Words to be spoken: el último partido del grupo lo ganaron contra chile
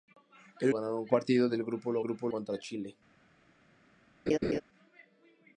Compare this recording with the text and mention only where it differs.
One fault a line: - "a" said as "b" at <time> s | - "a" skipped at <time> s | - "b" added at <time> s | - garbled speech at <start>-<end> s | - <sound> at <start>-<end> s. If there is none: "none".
- "último" said as "ganaron" at 0.7 s
- "ganaron" said as "grupo" at 2.0 s
- laugh at 4.3-4.6 s